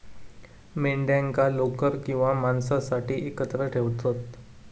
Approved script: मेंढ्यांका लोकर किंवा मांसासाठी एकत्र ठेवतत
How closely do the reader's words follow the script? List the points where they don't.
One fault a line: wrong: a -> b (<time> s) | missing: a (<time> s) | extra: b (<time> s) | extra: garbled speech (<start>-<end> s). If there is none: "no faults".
no faults